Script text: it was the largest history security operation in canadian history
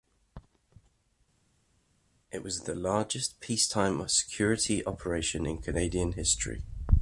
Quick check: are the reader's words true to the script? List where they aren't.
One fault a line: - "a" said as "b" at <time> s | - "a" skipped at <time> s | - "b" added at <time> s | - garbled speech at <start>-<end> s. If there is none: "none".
- "history" said as "peacetime" at 3.4 s